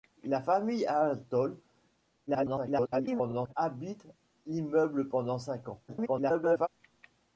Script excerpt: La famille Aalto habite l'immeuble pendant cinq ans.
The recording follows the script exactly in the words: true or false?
false